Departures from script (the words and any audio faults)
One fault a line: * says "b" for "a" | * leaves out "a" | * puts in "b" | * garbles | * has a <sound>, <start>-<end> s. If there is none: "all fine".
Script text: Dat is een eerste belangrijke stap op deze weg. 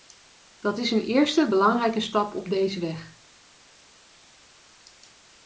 all fine